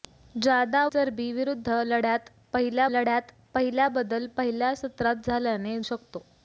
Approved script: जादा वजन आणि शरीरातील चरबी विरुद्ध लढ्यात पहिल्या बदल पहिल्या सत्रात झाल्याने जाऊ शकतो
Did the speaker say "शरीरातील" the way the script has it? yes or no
no